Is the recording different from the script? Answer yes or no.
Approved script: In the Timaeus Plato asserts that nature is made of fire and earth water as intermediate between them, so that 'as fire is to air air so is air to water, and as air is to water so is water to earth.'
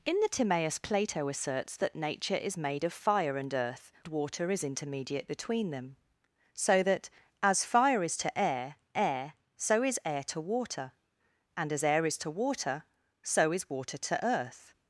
no